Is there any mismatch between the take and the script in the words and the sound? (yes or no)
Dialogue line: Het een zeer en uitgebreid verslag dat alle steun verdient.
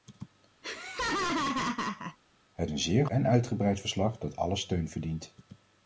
yes